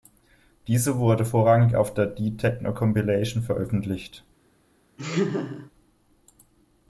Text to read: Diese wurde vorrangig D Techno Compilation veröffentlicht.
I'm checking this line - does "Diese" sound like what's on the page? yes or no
yes